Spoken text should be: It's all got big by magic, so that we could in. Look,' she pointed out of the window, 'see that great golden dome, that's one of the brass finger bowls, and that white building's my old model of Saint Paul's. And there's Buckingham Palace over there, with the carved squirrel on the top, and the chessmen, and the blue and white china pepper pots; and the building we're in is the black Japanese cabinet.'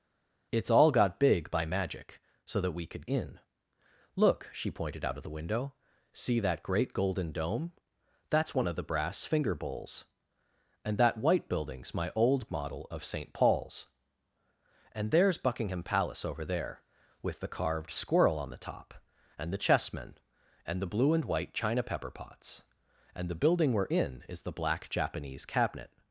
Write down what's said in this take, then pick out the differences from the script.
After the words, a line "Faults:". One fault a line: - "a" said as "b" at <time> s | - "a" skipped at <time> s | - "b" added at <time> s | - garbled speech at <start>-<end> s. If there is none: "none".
It's all got big by magic, so that we could in. Look,' she pointed out of the window, 'see that great golden dome, that's one of the brass finger bowls, and that white building's my old model of Saint Paul's. And there's Buckingham Palace over there, with the carved squirrel on the top, and the chessmen, and the blue and white china pepper pots; and the building we're in is the black Japanese cabinet.'
Faults:
none